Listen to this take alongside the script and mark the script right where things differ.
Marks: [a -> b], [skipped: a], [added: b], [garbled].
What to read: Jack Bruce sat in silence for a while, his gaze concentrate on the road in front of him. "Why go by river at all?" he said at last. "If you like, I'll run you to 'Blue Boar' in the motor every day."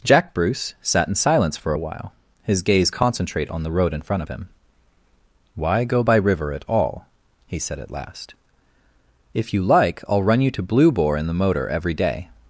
Jack Bruce sat in silence for a while, his gaze concentrate on the road in front of him. "Why go by river at all?" he said at last. "If you like, I'll run you to 'Blue Boar' in the motor every day."